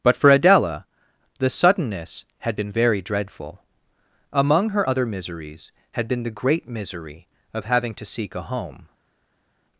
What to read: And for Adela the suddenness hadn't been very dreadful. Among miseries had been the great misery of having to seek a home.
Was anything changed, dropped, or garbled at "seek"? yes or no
no